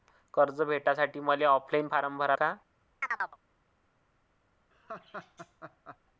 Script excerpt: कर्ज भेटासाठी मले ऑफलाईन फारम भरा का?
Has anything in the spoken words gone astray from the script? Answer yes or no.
no